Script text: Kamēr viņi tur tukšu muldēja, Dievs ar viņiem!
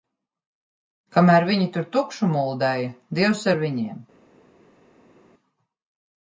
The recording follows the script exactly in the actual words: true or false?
true